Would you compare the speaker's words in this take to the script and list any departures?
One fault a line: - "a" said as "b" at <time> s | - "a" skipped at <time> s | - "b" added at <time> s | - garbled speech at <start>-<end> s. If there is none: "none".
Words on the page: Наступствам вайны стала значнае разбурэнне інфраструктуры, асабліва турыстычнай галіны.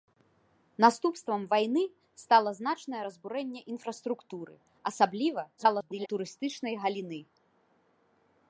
- garbled speech at 5.6-6.1 s